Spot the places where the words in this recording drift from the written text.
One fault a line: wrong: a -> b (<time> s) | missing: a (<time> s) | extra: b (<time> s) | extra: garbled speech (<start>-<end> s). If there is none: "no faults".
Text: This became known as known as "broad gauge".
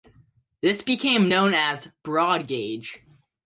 missing: known as (1.9 s)